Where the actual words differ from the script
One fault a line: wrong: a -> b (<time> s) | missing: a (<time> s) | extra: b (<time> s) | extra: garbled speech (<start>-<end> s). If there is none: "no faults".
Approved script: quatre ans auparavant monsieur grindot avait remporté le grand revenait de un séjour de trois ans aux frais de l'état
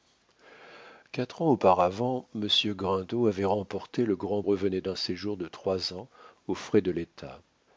no faults